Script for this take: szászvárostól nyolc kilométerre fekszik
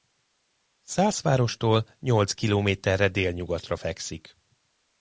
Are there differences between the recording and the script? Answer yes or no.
yes